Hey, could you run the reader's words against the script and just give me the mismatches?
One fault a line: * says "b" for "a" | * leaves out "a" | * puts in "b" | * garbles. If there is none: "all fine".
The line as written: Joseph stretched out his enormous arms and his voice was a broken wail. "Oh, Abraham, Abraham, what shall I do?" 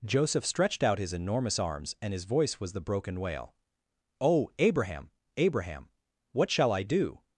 * says "the" for "a"